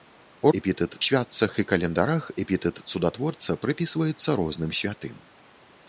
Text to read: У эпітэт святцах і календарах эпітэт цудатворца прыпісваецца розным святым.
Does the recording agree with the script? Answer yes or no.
yes